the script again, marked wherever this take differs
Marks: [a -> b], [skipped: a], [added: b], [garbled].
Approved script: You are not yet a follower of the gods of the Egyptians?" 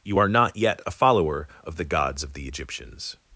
You are not yet a follower of the gods of the Egyptians?"